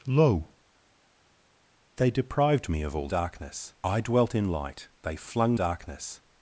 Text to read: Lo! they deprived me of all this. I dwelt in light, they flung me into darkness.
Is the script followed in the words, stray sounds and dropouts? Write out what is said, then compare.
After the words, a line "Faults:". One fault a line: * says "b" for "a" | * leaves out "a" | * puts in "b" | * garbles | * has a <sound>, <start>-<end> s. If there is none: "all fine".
Lo! they deprived me of all darkness. I dwelt in light, they flung darkness.
Faults:
* says "darkness" for "this"
* leaves out "me into"